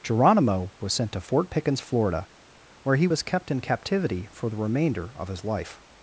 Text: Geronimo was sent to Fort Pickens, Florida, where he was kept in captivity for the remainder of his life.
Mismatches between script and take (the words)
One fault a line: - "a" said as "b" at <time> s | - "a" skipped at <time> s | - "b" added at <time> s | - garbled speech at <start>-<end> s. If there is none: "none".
none